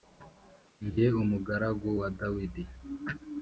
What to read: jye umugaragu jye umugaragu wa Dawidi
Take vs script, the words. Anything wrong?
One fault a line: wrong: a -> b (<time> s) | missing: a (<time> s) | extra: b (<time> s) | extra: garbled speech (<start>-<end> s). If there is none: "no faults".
missing: jye umugaragu (1.9 s)